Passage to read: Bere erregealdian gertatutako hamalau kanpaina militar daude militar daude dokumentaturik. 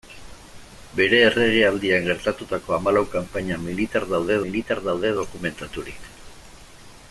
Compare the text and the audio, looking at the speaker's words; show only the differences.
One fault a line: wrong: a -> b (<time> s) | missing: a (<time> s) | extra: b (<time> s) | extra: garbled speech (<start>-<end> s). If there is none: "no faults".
no faults